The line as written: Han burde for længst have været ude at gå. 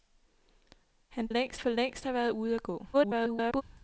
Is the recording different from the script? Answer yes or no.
yes